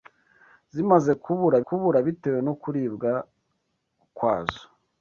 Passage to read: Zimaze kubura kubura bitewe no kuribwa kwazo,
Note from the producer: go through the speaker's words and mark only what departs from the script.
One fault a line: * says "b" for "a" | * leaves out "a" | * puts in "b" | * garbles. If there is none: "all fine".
all fine